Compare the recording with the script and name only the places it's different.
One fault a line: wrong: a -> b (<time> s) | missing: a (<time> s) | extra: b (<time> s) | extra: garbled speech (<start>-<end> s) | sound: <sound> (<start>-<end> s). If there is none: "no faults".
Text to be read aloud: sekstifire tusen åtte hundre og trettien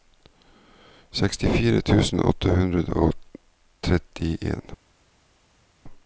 no faults